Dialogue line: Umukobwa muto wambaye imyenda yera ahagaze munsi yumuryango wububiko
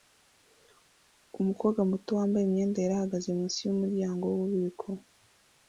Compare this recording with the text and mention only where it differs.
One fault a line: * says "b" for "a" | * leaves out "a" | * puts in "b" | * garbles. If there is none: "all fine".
all fine